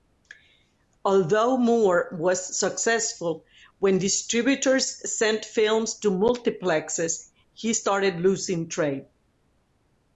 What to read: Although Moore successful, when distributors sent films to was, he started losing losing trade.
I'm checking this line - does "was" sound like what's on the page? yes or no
no